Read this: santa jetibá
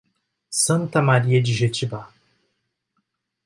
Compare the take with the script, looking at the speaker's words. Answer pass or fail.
fail